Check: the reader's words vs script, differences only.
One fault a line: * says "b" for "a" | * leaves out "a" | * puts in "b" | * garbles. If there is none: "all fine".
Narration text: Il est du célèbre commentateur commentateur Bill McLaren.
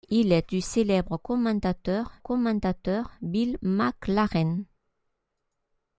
all fine